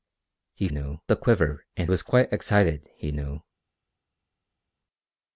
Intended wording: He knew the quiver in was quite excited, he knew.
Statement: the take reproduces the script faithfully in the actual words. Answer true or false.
true